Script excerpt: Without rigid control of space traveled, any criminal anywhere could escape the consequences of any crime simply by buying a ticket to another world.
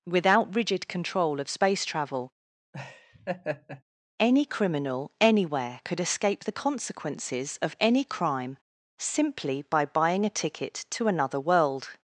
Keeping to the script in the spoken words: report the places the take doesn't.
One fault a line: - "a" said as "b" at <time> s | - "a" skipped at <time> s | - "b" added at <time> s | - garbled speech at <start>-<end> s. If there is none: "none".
- "traveled" said as "travel" at 1.9 s